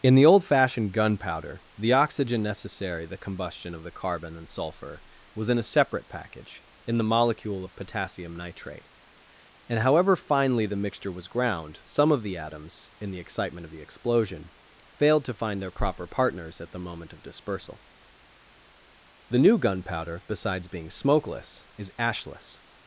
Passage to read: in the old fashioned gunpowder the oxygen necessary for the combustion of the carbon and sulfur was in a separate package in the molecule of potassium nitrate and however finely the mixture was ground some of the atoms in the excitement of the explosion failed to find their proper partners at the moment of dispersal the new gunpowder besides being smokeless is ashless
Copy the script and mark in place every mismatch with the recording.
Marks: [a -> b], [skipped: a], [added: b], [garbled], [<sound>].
in the old fashioned gunpowder the oxygen necessary [skipped: for] the combustion of the carbon and sulfur was in a separate package in the molecule of potassium nitrate and however finely the mixture was ground some of the atoms in the excitement of the explosion failed to find their proper partners at the moment of dispersal the new gunpowder besides being smokeless is ashless